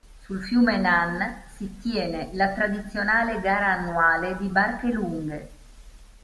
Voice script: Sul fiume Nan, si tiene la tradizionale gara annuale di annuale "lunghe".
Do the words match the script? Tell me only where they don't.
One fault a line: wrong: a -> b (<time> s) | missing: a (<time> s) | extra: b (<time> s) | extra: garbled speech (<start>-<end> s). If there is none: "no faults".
wrong: annuale -> barche (4.5 s)